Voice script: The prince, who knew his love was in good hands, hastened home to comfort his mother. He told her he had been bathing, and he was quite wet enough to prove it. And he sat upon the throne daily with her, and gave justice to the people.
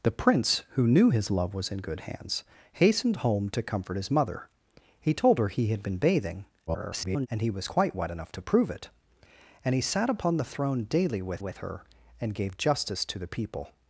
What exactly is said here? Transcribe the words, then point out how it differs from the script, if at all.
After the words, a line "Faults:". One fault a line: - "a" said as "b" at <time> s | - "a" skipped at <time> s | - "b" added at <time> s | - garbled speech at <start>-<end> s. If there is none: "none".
The prince, who knew his love was in good hands, hastened home to comfort his mother. He told her he had been bathing, [garbled] and he was quite wet enough to prove it. And he sat upon the throne daily with with her, and gave justice to the people.
Faults:
- garbled speech at 6.7-7.3 s
- "with" added at 11.4 s